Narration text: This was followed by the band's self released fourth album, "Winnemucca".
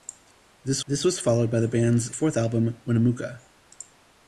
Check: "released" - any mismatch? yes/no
yes